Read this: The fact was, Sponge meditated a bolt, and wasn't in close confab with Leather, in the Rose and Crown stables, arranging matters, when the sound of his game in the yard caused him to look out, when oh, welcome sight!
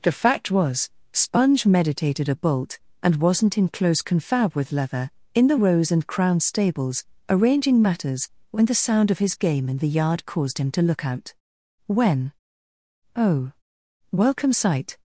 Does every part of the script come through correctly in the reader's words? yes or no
yes